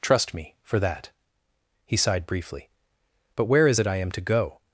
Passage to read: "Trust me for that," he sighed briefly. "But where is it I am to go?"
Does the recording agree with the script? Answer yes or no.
yes